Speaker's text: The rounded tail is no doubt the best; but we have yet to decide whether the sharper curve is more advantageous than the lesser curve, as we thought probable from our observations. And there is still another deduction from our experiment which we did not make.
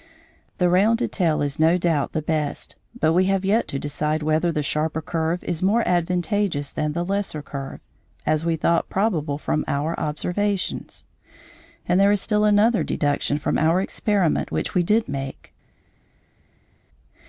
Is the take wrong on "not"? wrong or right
wrong